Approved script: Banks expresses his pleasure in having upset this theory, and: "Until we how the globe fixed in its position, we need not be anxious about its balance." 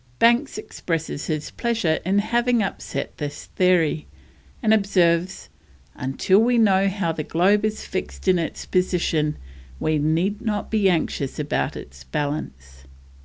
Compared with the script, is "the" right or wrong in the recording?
right